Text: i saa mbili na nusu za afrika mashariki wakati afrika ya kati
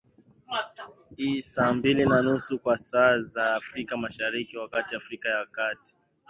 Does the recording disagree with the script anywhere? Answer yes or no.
yes